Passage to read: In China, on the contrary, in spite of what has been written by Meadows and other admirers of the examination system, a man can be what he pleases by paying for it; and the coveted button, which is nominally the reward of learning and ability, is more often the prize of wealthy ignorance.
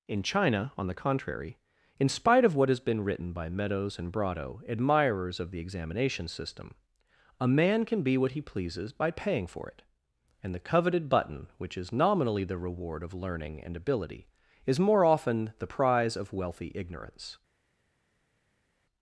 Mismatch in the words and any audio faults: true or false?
true